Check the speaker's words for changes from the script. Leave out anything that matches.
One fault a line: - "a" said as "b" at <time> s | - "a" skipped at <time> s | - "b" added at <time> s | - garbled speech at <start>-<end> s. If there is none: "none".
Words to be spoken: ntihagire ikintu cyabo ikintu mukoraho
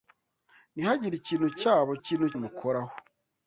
none